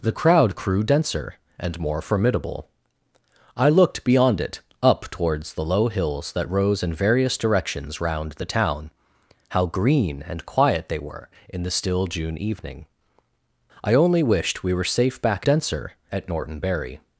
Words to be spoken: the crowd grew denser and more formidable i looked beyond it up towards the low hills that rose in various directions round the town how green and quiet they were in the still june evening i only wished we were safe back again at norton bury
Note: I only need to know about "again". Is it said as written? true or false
false